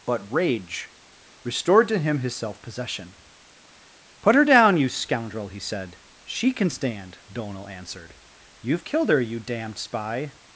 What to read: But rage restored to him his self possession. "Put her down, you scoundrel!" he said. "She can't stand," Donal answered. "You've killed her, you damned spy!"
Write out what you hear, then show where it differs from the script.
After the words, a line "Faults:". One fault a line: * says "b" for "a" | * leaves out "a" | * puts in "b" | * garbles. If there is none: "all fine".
But rage restored to him his self possession. "Put her down, you scoundrel!" he said. "She can stand," Donal answered. "You've killed her, you damned spy!"
Faults:
* says "can" for "can't"